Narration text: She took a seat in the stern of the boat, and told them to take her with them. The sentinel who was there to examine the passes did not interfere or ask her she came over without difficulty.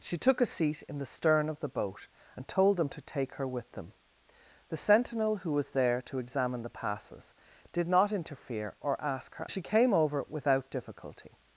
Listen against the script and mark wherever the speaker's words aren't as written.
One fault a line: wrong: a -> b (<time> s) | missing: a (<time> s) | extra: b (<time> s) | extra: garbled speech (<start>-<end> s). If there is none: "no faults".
no faults